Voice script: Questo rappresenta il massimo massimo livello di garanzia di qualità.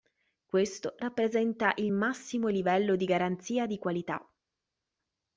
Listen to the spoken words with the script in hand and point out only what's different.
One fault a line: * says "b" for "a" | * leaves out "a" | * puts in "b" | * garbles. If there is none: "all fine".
* leaves out "massimo"